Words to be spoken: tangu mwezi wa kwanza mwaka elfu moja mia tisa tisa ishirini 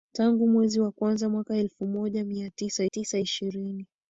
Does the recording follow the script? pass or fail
pass